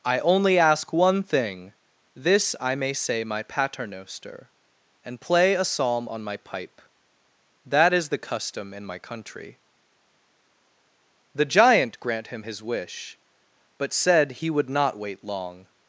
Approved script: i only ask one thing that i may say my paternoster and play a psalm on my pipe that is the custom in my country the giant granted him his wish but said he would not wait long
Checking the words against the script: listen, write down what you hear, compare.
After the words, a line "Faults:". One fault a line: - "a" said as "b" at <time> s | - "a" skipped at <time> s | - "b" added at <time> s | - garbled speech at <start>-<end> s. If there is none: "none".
i only ask one thing this i may say my paternoster and play a psalm on my pipe that is the custom in my country the giant grant him his wish but said he would not wait long
Faults:
- "that" said as "this" at 2.1 s
- "granted" said as "grant" at 12.0 s